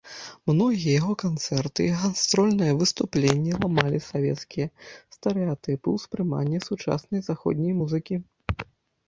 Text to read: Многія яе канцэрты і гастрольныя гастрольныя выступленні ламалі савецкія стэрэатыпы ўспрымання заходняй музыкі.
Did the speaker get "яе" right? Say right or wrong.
wrong